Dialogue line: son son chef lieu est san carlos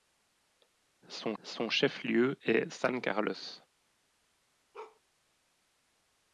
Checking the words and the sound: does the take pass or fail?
fail